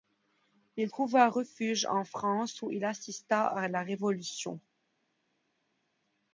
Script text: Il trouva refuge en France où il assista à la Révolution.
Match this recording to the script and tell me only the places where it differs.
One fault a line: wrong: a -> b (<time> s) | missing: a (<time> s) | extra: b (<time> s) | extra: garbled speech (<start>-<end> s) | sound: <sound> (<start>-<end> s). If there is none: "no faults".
no faults